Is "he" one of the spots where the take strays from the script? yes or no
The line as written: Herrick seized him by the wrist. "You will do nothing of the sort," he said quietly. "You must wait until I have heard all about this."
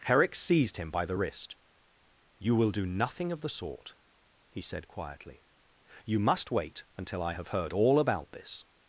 no